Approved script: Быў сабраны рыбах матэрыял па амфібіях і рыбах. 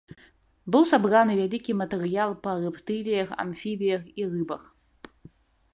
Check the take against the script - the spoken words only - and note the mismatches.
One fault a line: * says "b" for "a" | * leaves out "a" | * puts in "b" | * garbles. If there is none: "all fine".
* says "вялікі" for "рыбах"
* puts in "рэптыліях"